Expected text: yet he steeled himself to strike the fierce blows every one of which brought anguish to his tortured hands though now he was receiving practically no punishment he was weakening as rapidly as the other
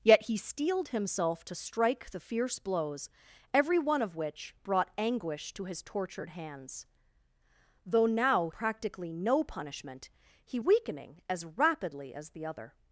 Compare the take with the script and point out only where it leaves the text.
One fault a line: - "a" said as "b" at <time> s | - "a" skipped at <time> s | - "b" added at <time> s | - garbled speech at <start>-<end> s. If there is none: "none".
- "he was receiving" skipped at 8.5 s
- "was" skipped at 10.6 s